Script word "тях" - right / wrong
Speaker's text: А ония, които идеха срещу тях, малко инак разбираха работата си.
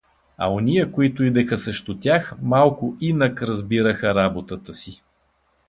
right